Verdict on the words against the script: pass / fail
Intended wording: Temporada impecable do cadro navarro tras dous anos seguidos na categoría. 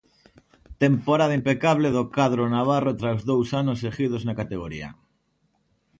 pass